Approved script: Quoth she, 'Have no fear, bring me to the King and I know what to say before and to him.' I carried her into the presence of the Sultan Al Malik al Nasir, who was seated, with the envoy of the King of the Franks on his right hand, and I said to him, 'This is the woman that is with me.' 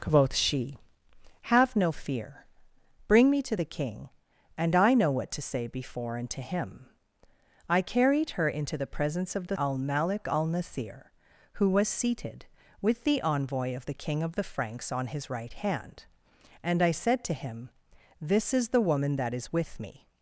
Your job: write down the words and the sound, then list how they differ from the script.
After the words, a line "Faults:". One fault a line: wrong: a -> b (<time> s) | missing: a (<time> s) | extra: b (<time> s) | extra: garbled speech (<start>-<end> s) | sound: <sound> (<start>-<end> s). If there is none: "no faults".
Quoth she, 'Have no fear, bring me to the King and I know what to say before and to him.' I carried her into the presence of the Al Malik al Nasir, who was seated, with the envoy of the King of the Franks on his right hand, and I said to him, 'This is the woman that is with me.'
Faults:
missing: Sultan (9.6 s)